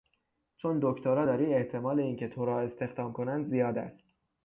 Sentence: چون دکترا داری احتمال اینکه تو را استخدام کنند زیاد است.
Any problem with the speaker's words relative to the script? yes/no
no